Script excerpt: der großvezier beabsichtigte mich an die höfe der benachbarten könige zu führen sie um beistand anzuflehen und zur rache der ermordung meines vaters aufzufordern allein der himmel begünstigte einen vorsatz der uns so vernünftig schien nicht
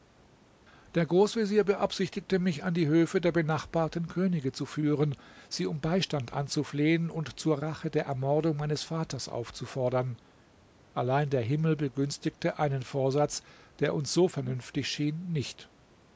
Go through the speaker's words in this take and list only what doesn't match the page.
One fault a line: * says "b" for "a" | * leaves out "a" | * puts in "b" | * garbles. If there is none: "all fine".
all fine